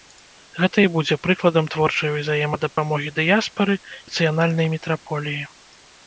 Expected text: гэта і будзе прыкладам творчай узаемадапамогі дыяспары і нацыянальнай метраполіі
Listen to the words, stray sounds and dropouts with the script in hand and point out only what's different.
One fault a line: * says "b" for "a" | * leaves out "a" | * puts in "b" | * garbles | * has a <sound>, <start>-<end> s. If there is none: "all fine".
* has a dropout, 2.7-2.8 s
* leaves out "і"